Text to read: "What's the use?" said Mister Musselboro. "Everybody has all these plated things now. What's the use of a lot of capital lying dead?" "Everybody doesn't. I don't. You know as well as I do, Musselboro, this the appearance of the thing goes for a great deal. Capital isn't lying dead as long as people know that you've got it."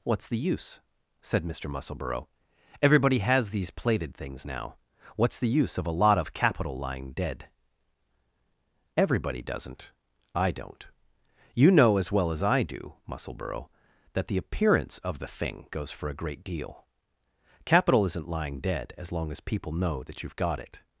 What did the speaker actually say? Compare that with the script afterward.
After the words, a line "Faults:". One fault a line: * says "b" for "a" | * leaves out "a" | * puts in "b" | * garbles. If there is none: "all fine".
"What's the use?" said Mister Musselboro. "Everybody has these plated things now. What's the use of a lot of capital lying dead?" "Everybody doesn't. I don't. You know as well as I do, Musselboro, that the appearance of the thing goes for a great deal. Capital isn't lying dead as long as people know that you've got it."
Faults:
* leaves out "all"
* says "that" for "this"